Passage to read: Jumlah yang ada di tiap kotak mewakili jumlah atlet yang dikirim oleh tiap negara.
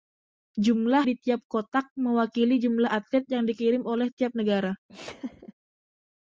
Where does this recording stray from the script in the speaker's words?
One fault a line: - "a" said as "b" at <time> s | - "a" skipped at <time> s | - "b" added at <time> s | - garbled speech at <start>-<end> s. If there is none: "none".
- "yang ada" skipped at 1.1 s